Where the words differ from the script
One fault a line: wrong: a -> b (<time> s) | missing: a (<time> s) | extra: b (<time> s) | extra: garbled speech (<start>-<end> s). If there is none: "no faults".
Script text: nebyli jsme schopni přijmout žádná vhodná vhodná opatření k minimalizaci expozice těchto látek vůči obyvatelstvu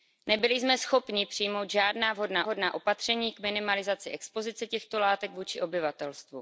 no faults